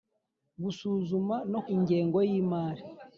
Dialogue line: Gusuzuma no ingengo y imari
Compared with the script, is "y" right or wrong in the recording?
right